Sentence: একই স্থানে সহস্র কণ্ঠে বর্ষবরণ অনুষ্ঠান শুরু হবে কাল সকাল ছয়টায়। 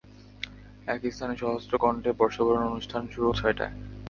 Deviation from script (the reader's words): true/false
true